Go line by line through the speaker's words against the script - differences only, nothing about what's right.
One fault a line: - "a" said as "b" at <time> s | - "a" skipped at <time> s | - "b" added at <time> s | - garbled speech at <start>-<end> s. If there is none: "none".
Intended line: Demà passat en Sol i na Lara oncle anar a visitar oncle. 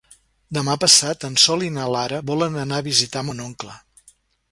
- "oncle" said as "volen" at 2.3 s
- "mon" added at 3.3 s